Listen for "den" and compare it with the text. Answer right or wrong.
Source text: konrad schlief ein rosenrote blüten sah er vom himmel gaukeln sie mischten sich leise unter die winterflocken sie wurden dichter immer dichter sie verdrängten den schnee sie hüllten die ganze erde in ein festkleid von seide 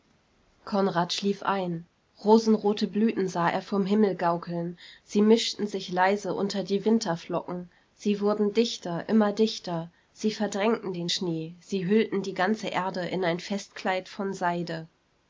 right